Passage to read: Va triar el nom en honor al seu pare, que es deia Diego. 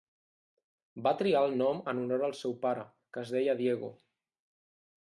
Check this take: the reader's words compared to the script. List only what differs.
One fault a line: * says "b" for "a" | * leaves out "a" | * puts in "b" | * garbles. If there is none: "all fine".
all fine